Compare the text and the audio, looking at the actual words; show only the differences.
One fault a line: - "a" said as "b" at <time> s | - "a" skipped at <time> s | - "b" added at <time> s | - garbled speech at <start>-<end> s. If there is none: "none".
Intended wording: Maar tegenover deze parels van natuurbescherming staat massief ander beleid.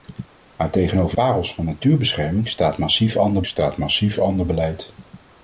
- "deze" skipped at 1.2 s
- "staat massief ander" added at 3.5 s